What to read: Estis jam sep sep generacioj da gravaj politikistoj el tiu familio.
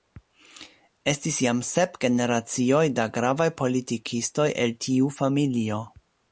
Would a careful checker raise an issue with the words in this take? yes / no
yes